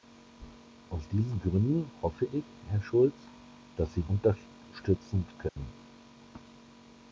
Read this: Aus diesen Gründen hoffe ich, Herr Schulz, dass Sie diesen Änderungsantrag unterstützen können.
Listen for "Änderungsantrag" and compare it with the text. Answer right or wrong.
wrong